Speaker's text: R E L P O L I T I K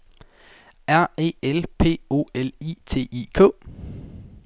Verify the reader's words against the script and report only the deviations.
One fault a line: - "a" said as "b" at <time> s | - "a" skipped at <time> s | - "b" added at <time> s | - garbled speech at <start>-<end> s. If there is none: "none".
none